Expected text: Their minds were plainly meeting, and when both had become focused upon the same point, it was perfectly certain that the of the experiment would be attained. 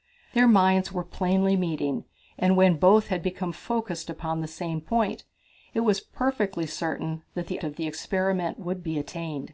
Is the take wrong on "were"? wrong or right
right